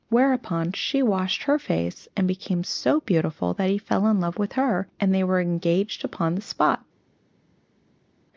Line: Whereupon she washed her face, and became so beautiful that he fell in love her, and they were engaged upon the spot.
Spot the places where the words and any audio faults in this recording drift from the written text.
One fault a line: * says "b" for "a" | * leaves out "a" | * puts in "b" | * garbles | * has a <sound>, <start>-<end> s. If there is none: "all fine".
* puts in "with"